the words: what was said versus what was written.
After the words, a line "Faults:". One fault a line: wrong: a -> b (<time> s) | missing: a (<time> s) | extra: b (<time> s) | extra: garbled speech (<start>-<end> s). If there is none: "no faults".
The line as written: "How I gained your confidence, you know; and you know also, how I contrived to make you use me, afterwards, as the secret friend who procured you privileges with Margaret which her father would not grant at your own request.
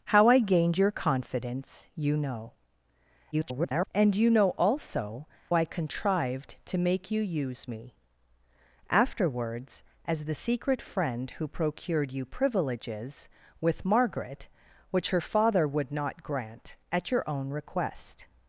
"How I gained your confidence, you know; [garbled] and you know also, I contrived to make you use me, afterwards, as the secret friend who procured you privileges with Margaret which her father would not grant at your own request.
Faults:
extra: garbled speech (3.3-3.9 s)
missing: how (5.3 s)